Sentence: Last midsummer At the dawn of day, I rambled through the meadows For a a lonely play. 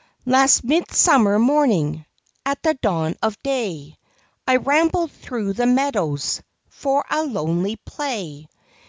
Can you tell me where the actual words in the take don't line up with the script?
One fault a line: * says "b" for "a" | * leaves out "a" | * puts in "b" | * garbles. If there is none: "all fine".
* puts in "morning"
* leaves out "a"